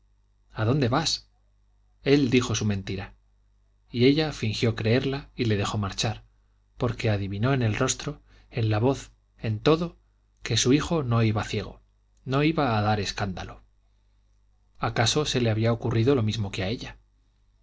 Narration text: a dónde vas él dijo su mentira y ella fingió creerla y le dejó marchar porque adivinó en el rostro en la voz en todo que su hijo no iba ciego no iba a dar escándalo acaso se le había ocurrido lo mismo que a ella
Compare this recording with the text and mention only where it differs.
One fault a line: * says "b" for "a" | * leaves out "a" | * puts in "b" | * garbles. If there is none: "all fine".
all fine